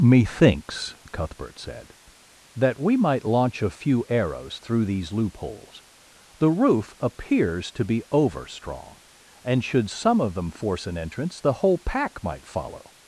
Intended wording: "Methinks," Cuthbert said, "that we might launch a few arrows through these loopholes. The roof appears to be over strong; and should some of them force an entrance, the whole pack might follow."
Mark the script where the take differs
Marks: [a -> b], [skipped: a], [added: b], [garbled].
"Methinks," Cuthbert said, "that we might launch a few arrows through these loopholes. The roof appears to be over strong; and should some of them force an entrance, the whole pack might follow."